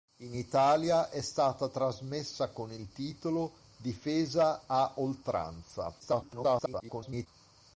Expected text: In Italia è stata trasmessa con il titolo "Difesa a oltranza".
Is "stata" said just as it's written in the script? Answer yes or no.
yes